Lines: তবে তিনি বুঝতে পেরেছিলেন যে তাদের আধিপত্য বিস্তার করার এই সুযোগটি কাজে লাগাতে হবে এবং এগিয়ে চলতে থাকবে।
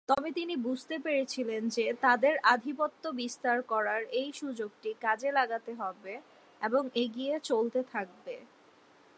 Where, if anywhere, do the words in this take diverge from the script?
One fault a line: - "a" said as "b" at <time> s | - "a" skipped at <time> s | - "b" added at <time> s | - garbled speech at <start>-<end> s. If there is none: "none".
none